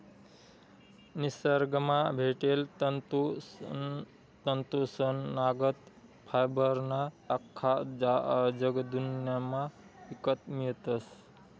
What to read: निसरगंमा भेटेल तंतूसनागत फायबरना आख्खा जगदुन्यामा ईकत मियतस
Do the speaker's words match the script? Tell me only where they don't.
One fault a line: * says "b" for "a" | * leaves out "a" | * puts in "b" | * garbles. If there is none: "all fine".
all fine